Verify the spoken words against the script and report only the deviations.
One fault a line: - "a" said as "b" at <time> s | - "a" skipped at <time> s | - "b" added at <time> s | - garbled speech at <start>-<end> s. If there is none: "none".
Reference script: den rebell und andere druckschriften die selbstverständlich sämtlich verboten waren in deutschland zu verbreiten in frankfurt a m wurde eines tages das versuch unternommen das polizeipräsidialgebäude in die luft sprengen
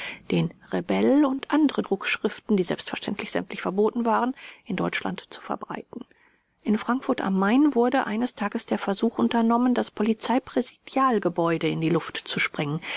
- "das" said as "der" at 8.6 s
- "zu" added at 12.2 s